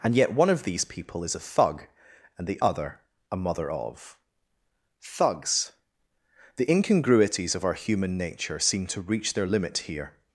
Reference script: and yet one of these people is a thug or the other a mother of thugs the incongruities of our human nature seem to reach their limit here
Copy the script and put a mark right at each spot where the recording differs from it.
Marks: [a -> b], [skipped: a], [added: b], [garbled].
and yet one of these people is a thug [or -> and] the other a mother of thugs the incongruities of our human nature seem to reach their limit here